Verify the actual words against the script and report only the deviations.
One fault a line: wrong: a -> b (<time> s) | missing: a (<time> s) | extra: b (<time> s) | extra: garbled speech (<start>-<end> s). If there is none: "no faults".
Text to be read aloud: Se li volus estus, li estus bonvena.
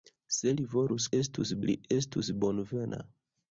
no faults